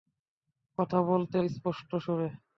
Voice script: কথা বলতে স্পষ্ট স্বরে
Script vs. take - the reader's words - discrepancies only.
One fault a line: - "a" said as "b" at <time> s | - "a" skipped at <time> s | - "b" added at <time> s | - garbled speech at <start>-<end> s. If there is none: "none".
none